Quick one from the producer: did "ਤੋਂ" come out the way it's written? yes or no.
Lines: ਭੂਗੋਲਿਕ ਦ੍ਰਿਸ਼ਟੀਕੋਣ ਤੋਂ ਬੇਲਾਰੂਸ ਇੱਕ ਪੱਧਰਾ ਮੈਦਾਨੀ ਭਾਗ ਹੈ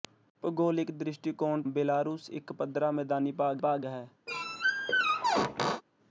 no